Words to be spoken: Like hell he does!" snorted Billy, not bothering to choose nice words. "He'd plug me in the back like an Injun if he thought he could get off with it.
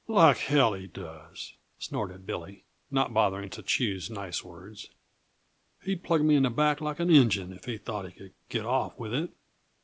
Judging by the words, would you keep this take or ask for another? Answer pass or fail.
pass